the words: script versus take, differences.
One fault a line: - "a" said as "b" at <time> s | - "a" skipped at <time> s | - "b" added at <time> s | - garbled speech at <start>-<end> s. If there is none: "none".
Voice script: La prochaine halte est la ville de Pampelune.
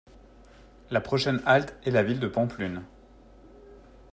none